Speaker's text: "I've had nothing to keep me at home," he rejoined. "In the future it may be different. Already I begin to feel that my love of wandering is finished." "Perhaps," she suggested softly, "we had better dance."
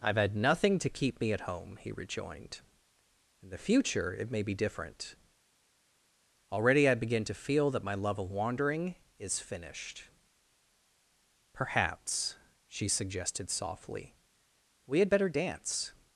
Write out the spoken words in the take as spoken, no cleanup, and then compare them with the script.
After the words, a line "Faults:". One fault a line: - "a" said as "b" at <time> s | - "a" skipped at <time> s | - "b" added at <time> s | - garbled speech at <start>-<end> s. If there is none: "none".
"I've had nothing to keep me at home," he rejoined. "In the future it may be different. Already I begin to feel that my love of wandering is finished." "Perhaps," she suggested softly, "we had better dance."
Faults:
none